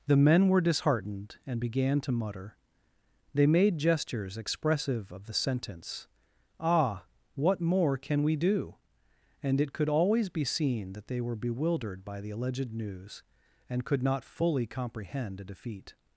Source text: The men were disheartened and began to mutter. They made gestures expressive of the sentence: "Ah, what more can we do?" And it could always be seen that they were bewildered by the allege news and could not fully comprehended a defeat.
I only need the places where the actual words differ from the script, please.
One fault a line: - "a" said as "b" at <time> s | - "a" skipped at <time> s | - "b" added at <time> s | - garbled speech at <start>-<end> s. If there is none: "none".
- "allege" said as "alleged" at 12.3 s
- "comprehended" said as "comprehend" at 14.7 s